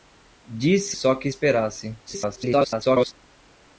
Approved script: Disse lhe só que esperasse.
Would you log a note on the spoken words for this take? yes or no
yes